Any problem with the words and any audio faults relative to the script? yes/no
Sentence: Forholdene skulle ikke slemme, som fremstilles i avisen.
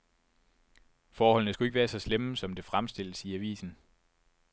yes